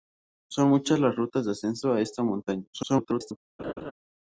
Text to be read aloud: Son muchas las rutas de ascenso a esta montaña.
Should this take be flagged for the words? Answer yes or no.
yes